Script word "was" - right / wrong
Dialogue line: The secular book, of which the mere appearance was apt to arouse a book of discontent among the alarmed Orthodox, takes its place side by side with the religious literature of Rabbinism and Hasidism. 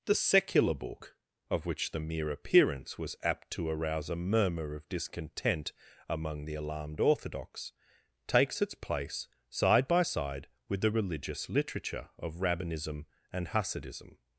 right